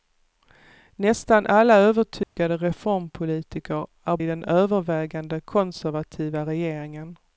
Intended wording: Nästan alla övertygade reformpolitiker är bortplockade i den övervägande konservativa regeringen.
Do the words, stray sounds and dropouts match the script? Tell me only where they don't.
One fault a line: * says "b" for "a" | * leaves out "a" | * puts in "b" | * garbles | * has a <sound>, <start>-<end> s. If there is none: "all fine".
* has a dropout, 2.2-2.4 s
* leaves out "bortplockade"